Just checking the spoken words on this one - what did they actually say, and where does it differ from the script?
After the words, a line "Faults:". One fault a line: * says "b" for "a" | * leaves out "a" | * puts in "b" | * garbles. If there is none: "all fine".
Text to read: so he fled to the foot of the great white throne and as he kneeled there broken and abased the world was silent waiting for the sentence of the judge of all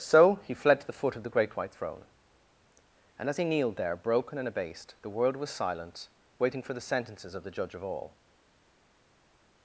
so he fled to the foot of the great white throne and as he kneeled there broken and abased the world was silent waiting for the sentences of the judge of all
Faults:
* says "sentences" for "sentence"